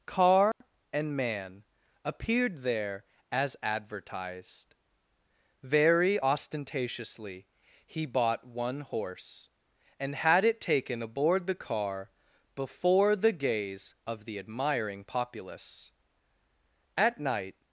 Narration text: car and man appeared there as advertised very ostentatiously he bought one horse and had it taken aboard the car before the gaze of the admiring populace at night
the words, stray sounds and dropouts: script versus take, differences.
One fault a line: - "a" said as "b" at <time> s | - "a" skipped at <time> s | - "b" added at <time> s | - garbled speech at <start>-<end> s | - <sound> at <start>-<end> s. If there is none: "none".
- dropout at 0.5-0.6 s